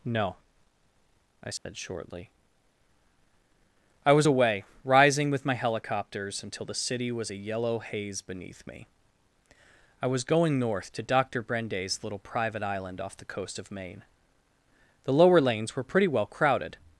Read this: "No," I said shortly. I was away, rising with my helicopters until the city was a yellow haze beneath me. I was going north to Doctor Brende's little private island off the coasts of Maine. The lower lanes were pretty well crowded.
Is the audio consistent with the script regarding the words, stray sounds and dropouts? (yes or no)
no